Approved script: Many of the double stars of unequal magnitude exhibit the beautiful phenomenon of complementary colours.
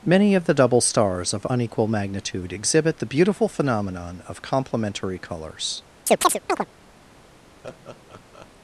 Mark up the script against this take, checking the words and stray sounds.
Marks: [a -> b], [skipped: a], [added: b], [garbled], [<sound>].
Many of the double stars of unequal magnitude exhibit the beautiful phenomenon of complementary colours. [chirp] [laugh]